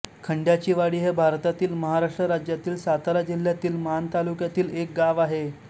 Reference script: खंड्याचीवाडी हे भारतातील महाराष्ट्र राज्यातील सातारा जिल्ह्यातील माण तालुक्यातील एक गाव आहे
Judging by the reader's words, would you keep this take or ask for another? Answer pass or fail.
pass